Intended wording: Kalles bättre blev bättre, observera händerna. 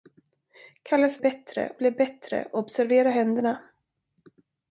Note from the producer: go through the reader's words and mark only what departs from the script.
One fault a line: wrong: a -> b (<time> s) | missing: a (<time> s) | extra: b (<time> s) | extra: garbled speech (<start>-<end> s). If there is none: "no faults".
no faults